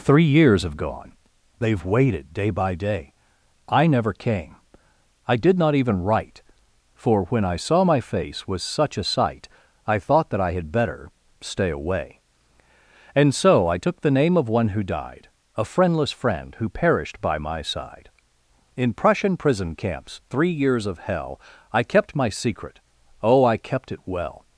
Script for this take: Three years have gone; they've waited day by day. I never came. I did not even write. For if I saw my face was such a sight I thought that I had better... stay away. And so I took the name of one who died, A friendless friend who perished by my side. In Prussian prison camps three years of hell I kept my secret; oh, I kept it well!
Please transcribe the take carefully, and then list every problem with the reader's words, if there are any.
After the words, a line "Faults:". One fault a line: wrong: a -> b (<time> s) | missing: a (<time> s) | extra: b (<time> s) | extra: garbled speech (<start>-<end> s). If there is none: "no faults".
Three years have gone; they've waited day by day. I never came. I did not even write. For when I saw my face was such a sight I thought that I had better... stay away. And so I took the name of one who died, A friendless friend who perished by my side. In Prussian prison camps three years of hell I kept my secret; oh, I kept it well!
Faults:
wrong: if -> when (7.2 s)